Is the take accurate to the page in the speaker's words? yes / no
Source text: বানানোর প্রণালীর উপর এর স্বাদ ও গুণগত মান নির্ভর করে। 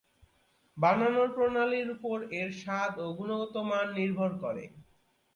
yes